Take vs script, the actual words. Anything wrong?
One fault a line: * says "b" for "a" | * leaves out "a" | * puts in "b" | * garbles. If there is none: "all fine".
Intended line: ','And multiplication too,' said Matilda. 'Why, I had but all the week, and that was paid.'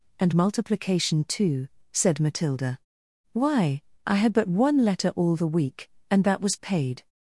* puts in "one letter"